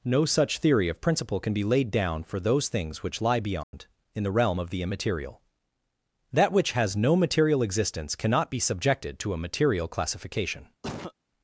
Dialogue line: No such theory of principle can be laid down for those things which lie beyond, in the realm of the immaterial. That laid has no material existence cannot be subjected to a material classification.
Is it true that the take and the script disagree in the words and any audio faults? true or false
true